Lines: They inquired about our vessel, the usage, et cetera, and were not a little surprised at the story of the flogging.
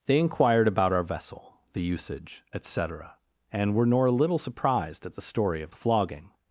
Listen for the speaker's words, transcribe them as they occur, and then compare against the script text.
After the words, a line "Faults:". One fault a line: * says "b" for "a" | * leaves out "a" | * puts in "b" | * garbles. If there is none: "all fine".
They inquired about our vessel, the usage, et cetera, and were nor a little surprised at the story of the flogging.
Faults:
* says "nor" for "not"